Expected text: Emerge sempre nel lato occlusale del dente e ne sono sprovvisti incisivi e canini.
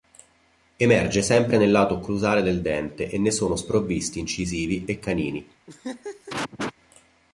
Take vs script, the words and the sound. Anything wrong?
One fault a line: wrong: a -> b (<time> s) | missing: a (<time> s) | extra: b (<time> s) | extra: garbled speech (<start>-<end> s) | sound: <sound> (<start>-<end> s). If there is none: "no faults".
sound: laugh (5.7-6.7 s)